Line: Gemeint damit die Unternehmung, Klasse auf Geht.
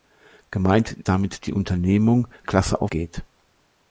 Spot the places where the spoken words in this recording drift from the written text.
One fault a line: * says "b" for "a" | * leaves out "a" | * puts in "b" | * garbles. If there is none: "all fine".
all fine